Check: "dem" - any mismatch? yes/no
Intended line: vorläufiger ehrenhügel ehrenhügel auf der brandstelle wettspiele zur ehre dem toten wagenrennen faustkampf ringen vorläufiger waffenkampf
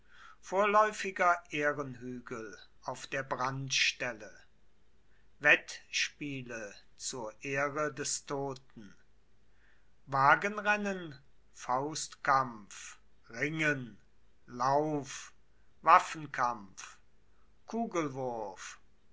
yes